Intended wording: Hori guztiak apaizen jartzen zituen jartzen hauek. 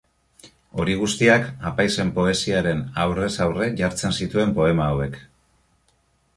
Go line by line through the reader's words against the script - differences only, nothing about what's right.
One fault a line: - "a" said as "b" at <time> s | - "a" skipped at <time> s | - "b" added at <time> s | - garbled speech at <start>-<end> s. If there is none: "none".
- "poesiaren aurrez aurre" added at 2.1 s
- "jartzen" said as "poema" at 4.6 s